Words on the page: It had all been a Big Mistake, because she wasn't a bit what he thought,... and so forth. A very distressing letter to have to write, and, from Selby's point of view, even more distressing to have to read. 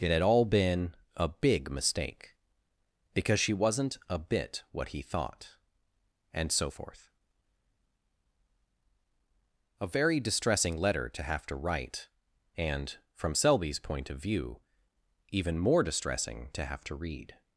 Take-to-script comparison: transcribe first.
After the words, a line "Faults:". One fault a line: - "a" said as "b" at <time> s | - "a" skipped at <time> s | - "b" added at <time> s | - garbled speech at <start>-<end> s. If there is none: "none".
It had all been a Big Mistake, because she wasn't a bit what he thought,... and so forth. A very distressing letter to have to write, and, from Selby's point of view, even more distressing to have to read.
Faults:
none